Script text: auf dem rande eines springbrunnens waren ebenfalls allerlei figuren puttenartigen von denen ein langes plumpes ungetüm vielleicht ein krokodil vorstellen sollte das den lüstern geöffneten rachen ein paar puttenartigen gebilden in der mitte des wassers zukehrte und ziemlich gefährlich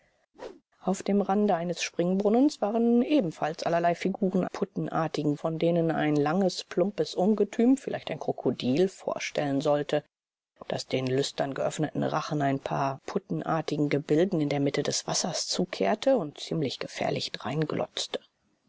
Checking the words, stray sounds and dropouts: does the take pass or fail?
fail